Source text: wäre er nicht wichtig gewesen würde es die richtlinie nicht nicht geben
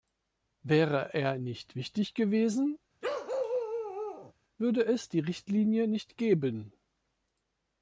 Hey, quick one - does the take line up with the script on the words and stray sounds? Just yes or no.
no